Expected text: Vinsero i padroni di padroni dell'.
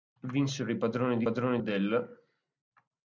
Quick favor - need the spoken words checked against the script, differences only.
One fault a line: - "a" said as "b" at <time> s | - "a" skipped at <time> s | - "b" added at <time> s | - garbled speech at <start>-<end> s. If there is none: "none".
none